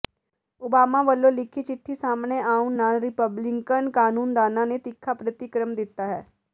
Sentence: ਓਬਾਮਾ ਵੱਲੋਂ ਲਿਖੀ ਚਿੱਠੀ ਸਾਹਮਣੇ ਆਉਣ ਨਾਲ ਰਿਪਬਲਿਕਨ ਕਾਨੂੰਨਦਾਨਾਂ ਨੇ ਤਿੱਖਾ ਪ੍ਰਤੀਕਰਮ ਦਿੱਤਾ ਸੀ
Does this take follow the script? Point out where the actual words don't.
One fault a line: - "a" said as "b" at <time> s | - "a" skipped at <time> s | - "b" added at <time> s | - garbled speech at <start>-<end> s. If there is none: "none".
- "ਸੀ" said as "ਹੈ" at 6.1 s